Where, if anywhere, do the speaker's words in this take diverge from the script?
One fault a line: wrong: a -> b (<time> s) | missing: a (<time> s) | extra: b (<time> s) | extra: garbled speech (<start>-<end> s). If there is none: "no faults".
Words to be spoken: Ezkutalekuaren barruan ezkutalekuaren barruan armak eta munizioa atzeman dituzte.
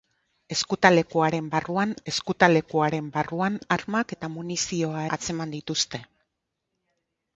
no faults